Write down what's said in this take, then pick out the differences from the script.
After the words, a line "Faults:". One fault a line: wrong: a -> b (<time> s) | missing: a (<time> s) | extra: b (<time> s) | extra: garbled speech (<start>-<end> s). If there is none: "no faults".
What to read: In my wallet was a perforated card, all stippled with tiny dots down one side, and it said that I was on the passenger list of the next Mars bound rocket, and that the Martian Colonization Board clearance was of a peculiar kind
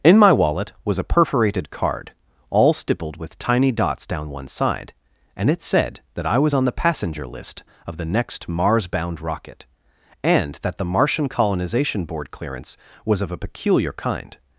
In my wallet was a perforated card, all stippled with tiny dots down one side, and it said that I was on the passenger list of the next Mars bound rocket, and that the Martian Colonization Board clearance was of a peculiar kind
Faults:
no faults